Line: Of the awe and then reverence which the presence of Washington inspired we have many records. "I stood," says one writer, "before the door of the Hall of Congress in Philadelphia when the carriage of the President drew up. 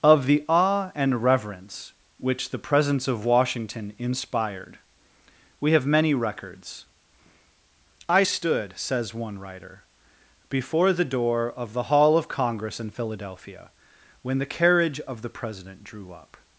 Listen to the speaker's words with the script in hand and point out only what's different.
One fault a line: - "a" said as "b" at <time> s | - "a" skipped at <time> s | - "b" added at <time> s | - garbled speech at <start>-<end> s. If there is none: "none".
- "then" skipped at 1.2 s